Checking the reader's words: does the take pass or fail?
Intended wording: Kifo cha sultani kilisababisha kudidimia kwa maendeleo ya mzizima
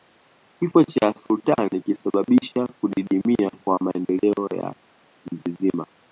pass